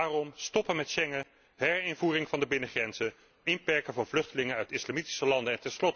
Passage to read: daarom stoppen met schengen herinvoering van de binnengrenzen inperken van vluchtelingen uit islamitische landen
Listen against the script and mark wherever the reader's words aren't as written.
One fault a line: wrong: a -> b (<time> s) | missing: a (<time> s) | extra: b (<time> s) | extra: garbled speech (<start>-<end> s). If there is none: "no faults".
no faults